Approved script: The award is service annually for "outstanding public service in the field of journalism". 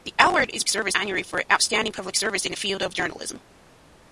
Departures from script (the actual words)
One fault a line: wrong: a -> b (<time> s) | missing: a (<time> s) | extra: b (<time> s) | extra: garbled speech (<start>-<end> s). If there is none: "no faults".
no faults